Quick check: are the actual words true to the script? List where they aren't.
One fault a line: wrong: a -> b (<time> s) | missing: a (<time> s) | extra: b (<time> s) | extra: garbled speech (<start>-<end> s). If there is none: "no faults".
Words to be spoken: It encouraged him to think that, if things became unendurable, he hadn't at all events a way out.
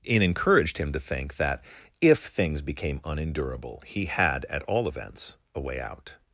wrong: hadn't -> had (4.0 s)